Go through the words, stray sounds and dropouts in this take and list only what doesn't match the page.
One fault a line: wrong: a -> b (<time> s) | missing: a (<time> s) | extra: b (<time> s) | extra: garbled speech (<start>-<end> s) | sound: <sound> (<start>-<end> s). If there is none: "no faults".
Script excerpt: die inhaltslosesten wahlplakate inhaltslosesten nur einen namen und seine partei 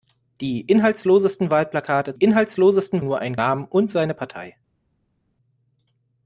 no faults